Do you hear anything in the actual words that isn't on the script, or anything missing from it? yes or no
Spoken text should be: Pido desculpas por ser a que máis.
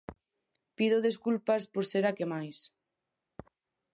no